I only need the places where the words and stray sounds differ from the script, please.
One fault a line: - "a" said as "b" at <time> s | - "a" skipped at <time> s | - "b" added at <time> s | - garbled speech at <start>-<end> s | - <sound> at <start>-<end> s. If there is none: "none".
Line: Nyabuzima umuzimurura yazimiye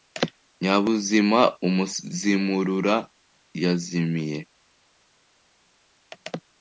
none